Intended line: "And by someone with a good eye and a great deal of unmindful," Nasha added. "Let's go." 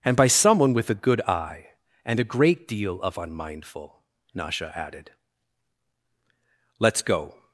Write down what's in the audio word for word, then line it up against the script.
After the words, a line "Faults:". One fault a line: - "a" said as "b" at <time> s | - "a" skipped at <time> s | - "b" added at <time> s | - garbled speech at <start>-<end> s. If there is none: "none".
"And by someone with a good eye and a great deal of unmindful," Nasha added. "Let's go."
Faults:
none